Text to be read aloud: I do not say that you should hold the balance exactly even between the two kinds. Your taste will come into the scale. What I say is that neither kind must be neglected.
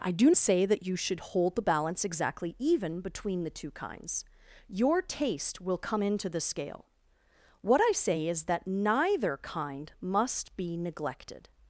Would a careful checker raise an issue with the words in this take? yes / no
yes